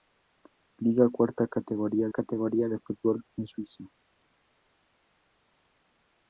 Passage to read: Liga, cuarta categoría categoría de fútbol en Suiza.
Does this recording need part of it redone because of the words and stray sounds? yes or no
no